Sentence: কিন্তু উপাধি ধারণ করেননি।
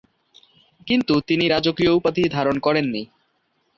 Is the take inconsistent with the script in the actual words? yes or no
yes